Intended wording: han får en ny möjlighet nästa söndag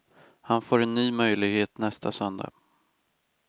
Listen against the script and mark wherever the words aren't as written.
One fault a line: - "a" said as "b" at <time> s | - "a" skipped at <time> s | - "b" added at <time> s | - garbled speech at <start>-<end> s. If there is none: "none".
none